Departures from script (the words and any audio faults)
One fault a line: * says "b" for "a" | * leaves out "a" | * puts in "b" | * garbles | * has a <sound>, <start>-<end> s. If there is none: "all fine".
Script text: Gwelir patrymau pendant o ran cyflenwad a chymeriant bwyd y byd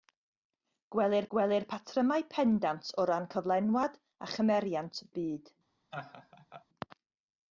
* puts in "gwelir"
* leaves out "bwyd"
* has a laugh, 5.9-6.7 s